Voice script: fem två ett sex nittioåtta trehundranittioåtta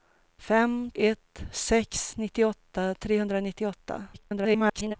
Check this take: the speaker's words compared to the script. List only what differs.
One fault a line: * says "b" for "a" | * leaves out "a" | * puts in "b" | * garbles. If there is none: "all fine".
* leaves out "två"
* garbles